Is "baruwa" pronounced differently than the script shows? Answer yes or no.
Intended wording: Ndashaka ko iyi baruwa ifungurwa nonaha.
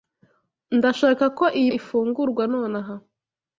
yes